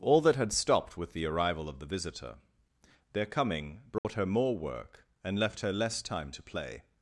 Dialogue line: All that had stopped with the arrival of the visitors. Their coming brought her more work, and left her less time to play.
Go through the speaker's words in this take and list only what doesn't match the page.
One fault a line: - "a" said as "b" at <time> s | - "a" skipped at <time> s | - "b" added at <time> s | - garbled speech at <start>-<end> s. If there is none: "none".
- "visitors" said as "visitor" at 1.9 s